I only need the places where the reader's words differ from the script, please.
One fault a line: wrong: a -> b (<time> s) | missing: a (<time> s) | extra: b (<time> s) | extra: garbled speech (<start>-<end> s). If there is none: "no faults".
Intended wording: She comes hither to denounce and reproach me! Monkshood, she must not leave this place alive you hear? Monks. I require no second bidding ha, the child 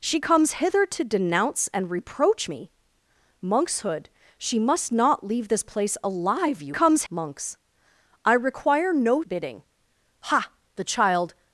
wrong: hear -> comes (6.7 s)
missing: second (9.2 s)